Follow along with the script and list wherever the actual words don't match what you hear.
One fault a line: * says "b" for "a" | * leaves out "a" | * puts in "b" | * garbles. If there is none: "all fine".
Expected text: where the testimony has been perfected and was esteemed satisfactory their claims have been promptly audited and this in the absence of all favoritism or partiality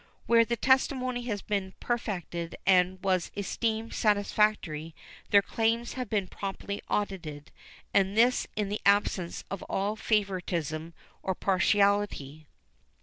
all fine